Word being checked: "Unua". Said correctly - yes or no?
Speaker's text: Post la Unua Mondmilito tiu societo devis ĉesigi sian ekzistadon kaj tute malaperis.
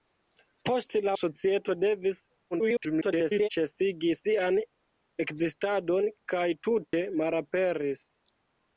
no